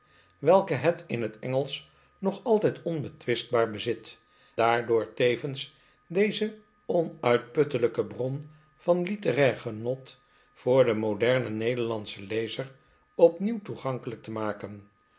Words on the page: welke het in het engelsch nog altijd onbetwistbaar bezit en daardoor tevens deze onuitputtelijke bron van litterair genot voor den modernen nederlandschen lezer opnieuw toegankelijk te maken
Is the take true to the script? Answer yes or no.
no